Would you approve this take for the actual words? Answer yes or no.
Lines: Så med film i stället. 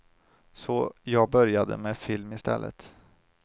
no